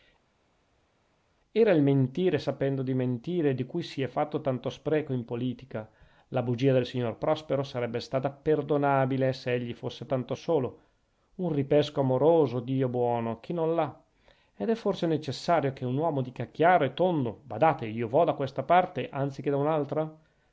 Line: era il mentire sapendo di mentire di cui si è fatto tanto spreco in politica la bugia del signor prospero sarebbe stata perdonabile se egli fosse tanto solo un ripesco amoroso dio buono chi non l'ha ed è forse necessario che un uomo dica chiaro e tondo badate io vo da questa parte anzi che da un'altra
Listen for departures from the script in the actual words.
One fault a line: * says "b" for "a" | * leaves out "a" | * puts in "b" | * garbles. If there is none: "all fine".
all fine